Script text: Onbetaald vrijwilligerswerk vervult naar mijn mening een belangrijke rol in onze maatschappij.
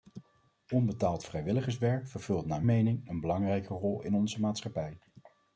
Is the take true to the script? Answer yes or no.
no